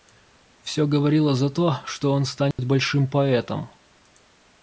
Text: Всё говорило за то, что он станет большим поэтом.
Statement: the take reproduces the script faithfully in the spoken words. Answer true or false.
true